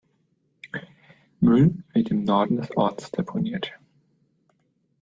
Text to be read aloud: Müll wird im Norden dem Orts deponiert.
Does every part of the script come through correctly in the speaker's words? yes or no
no